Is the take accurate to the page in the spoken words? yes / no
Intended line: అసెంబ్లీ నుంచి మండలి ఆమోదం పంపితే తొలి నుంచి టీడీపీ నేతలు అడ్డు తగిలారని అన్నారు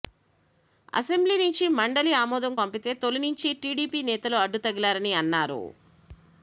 yes